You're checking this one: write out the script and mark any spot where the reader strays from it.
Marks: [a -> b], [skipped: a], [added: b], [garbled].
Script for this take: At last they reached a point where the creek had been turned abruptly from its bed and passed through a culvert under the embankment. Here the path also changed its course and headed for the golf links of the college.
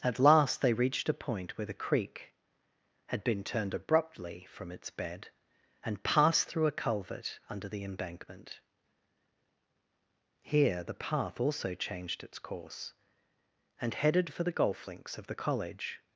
At last they reached a point where the creek had been turned abruptly from its bed and passed through a culvert under the embankment. Here the path also changed its course and headed for the golf links of the college.